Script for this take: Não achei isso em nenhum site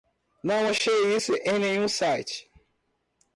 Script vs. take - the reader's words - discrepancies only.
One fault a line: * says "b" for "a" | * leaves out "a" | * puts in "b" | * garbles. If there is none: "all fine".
all fine